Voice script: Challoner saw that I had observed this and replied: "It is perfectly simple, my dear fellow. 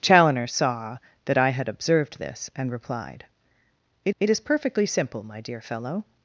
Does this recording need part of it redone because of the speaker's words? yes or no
yes